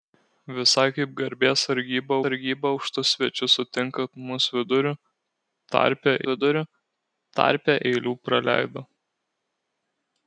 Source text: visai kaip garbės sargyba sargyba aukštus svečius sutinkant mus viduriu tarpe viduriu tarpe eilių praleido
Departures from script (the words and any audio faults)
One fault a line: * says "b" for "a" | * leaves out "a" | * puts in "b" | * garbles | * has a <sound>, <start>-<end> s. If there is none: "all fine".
all fine